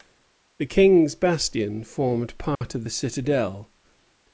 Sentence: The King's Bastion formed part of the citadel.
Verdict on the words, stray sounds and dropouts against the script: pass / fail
fail